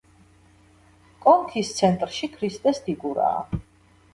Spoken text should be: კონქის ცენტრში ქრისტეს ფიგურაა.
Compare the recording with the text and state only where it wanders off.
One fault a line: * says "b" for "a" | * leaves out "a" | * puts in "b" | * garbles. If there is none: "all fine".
all fine